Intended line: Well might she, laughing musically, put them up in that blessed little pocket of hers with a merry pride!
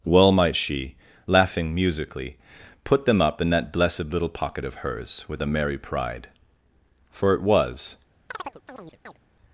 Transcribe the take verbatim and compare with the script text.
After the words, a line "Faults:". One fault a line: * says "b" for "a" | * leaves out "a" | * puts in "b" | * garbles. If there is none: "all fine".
Well might she, laughing musically, put them up in that blessed little pocket of hers with a merry pride! For it was
Faults:
* puts in "For it was"